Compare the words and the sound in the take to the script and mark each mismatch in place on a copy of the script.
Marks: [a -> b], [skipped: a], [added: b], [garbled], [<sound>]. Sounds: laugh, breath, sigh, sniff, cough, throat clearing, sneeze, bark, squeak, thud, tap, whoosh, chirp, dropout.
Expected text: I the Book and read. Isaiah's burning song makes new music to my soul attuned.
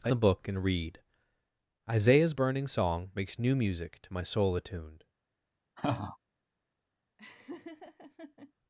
I the Book and read. Isaiah's burning song makes new music to my soul attuned. [laugh] [laugh]